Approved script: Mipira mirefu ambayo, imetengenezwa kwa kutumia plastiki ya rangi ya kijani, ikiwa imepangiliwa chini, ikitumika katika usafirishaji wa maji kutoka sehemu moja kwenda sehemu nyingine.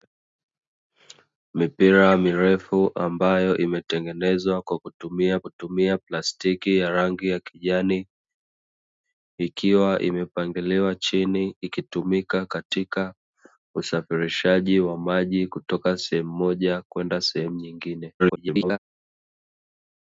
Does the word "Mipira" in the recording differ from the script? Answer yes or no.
no